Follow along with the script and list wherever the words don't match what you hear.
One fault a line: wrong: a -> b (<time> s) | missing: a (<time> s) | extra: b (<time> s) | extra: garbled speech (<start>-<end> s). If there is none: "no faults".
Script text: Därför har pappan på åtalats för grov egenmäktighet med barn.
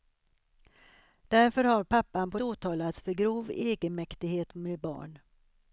no faults